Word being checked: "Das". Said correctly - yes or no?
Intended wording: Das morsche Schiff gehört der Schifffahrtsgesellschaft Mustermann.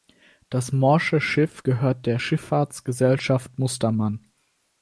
yes